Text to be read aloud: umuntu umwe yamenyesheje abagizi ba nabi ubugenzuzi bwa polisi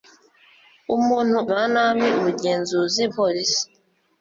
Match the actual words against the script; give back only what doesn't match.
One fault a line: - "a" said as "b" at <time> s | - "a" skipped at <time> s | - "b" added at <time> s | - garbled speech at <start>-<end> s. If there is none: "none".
- "umwe yamenyesheje abagizi" skipped at 1.4 s
- "bwa" skipped at 3.0 s